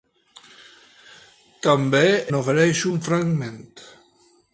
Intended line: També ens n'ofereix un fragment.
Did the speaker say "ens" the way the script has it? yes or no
no